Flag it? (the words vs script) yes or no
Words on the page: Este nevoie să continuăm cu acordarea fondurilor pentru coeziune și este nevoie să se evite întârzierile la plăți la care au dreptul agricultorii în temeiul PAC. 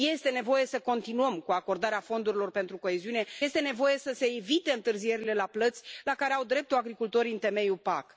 yes